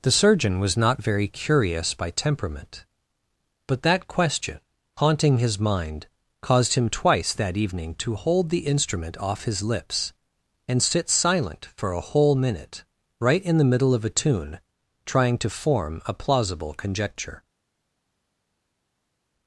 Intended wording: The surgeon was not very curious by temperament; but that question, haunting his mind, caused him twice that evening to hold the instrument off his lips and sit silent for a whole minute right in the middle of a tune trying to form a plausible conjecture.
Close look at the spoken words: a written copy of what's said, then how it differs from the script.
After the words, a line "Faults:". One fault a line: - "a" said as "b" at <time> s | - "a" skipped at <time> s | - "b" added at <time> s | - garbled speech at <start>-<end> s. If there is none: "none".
The surgeon was not very curious by temperament; but that question, haunting his mind, caused him twice that evening to hold the instrument off his lips and sit silent for a whole minute right in the middle of a tune trying to form a plausible conjecture.
Faults:
none